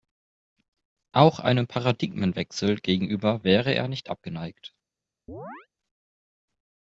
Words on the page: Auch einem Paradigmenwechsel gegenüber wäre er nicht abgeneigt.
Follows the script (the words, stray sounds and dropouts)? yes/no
no